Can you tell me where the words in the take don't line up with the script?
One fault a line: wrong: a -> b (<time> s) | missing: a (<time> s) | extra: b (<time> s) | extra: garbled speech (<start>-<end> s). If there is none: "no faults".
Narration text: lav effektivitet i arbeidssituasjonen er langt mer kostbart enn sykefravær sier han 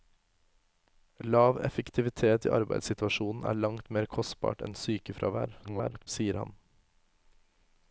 extra: garbled speech (5.6-6.1 s)